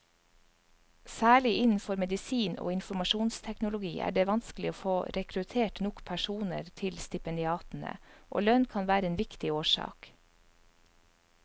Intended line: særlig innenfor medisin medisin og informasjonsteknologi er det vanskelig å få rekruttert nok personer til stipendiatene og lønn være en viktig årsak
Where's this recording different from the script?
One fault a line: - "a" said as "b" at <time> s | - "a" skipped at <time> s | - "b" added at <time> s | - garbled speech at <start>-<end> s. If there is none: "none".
- "medisin" skipped at 2.5 s
- "kan" added at 8.8 s